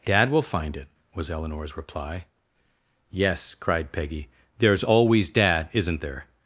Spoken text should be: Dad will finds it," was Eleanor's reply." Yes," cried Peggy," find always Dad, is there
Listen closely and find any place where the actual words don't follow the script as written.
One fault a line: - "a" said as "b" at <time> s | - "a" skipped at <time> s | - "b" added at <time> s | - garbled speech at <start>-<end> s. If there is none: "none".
- "finds" said as "find" at 0.4 s
- "find" said as "there's" at 4.6 s
- "is" said as "isn't" at 5.7 s